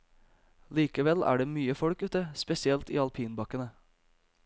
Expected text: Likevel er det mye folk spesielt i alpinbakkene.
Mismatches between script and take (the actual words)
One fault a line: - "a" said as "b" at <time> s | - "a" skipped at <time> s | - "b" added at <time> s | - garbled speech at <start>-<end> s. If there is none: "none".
- "ute" added at 2.0 s